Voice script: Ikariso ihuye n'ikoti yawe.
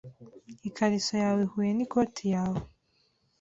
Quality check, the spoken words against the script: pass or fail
fail